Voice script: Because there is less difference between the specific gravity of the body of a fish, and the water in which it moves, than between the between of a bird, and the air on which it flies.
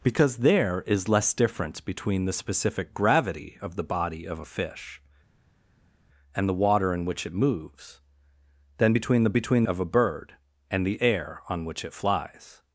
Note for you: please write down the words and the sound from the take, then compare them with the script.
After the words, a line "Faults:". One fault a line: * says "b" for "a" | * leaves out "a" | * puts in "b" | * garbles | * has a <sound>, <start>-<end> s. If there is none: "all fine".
Because there is less difference between the specific gravity of the body of a fish, and the water in which it moves, than between the between of a bird, and the air on which it flies.
Faults:
all fine